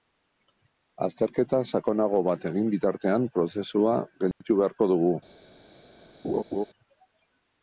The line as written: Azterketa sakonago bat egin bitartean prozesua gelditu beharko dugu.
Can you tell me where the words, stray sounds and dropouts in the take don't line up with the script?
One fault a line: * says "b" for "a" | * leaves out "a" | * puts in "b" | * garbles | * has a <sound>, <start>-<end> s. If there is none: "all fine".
* has a dropout, 4.3-4.4 s
* has a laugh, 6.2-6.6 s